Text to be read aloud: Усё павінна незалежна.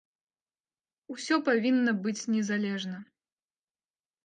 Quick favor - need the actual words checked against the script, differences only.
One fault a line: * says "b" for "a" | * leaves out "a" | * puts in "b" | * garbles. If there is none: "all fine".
* puts in "быць"